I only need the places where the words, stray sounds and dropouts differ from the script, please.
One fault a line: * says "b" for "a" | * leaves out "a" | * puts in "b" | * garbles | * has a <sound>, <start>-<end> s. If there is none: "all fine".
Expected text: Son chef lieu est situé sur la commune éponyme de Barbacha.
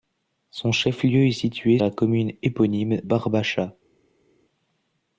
* leaves out "sur"
* leaves out "de"